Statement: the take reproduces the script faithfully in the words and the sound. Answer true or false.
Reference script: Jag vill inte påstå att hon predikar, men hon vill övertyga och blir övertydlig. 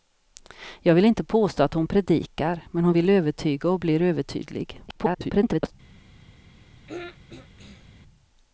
false